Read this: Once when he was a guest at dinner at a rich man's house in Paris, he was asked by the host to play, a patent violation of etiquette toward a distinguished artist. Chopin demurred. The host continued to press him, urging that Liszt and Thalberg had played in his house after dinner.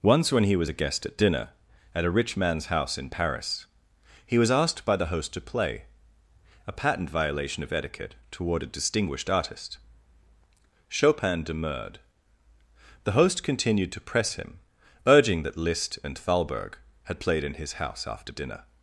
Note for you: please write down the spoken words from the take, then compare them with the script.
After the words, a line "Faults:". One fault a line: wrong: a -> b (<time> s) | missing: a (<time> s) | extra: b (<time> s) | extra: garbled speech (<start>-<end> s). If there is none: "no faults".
Once when he was a guest at dinner at a rich man's house in Paris, he was asked by the host to play, a patent violation of etiquette toward a distinguished artist. Chopin demurred. The host continued to press him, urging that Liszt and Thalberg had played in his house after dinner.
Faults:
no faults